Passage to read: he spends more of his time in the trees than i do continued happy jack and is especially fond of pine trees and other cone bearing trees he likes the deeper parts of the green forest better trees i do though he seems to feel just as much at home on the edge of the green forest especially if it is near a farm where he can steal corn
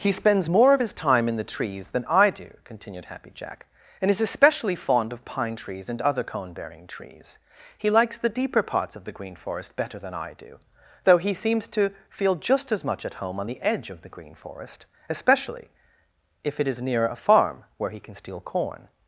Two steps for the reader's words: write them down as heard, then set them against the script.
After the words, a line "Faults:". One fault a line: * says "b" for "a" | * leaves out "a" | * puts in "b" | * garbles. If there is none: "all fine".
he spends more of his time in the trees than i do continued happy jack and is especially fond of pine trees and other cone bearing trees he likes the deeper parts of the green forest better than i do though he seems to feel just as much at home on the edge of the green forest especially if it is near a farm where he can steal corn
Faults:
* says "than" for "trees"